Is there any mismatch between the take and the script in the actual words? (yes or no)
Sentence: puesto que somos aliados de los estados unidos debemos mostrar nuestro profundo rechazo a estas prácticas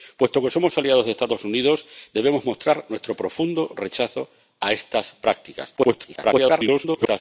yes